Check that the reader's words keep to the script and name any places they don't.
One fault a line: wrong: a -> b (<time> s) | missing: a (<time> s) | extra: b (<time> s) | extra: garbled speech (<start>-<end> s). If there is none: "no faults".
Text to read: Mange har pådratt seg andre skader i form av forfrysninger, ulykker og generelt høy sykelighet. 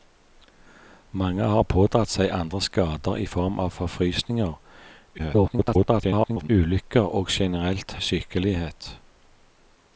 extra: garbled speech (5.2-6.5 s)
missing: høy (7.9 s)